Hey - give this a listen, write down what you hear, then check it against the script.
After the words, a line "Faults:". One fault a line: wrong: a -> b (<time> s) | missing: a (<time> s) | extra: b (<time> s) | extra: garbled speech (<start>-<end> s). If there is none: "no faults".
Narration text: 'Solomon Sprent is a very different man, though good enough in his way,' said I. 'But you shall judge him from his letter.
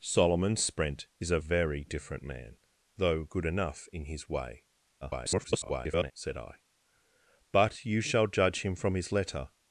'Solomon Sprent is a very different man, though good enough in his way,' [garbled] said I. 'But you shall judge him from his letter.
Faults:
extra: garbled speech (5.0-6.1 s)